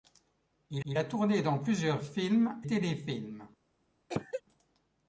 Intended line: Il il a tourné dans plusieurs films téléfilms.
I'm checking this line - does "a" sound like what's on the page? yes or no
yes